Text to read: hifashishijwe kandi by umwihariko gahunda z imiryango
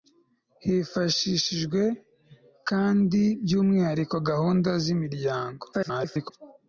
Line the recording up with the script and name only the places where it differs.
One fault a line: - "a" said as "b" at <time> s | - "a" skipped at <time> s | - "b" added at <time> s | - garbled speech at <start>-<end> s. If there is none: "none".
- garbled speech at 5.7-6.3 s